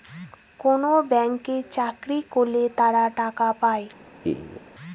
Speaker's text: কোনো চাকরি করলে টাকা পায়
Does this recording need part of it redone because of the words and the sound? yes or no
yes